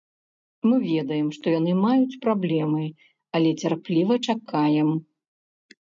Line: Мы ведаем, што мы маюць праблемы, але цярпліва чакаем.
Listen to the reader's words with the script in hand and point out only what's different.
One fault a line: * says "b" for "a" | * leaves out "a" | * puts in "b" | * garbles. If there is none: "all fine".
* says "яны" for "мы"